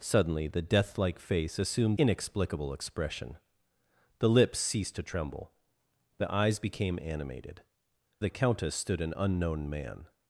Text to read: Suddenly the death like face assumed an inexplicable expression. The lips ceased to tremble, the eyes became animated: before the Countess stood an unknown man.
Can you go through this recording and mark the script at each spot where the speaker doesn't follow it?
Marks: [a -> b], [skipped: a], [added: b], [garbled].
Suddenly the death like face assumed [skipped: an] inexplicable expression. The lips ceased to tremble, the eyes became animated: [skipped: before] the Countess stood an unknown man.